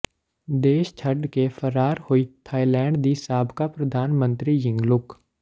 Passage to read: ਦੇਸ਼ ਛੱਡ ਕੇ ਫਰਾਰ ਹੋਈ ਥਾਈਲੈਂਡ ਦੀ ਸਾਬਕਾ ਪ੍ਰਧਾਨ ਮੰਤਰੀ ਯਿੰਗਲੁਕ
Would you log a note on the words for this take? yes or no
no